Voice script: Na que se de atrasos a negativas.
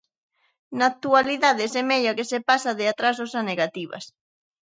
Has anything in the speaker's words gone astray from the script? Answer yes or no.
yes